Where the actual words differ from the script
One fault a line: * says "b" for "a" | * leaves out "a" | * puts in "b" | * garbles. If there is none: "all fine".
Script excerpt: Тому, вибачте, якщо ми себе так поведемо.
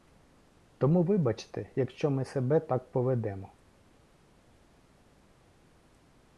all fine